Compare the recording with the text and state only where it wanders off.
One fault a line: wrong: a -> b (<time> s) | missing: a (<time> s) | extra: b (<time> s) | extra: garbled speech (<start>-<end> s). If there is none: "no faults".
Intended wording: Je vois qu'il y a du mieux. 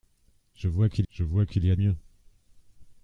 extra: je vois qu'il (1.1 s)
missing: du (1.8 s)